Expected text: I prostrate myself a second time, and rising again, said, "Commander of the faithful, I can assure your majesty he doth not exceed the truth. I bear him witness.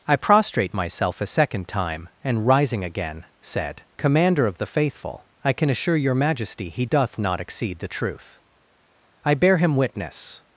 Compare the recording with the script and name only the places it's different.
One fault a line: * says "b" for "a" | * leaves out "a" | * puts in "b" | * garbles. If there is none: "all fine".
all fine